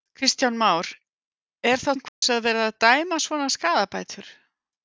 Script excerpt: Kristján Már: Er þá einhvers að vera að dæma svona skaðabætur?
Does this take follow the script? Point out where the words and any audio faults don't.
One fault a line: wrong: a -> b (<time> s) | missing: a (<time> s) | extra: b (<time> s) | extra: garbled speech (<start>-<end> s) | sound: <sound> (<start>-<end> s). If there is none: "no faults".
sound: dropout (2.1-2.2 s)